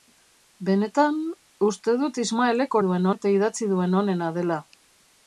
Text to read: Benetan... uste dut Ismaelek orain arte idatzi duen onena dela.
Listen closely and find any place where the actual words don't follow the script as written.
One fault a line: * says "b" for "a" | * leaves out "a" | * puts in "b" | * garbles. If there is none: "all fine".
* says "duen" for "orain"